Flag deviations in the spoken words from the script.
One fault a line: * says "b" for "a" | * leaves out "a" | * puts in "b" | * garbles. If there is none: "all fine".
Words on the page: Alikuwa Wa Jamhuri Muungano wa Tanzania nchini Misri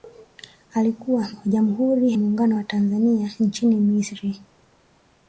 all fine